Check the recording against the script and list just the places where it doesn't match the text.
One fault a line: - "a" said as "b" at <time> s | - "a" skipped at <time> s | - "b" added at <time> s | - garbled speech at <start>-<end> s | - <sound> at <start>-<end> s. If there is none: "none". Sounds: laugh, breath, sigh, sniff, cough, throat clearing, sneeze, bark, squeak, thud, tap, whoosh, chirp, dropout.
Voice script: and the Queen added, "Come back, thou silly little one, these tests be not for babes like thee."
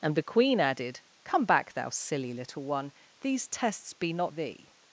- "for babes like" skipped at 4.3 s